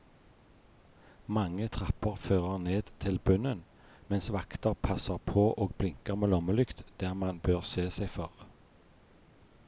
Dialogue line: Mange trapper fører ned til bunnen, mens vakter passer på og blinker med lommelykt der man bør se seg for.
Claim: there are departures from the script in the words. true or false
false